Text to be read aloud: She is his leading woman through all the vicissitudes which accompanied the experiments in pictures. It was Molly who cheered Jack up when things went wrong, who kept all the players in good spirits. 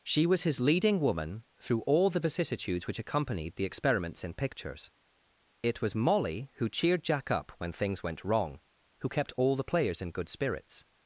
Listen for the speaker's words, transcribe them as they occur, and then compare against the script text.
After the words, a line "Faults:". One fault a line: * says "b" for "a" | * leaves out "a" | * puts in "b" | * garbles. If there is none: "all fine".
She was his leading woman through all the vicissitudes which accompanied the experiments in pictures. It was Molly who cheered Jack up when things went wrong, who kept all the players in good spirits.
Faults:
* says "was" for "is"